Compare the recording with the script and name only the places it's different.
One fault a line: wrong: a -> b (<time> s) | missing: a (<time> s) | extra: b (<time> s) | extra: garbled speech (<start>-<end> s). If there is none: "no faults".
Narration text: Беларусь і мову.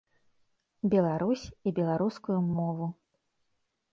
extra: беларускую (1.8 s)